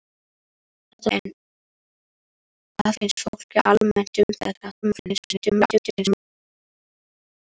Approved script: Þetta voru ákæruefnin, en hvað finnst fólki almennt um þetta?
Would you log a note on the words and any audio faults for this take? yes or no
yes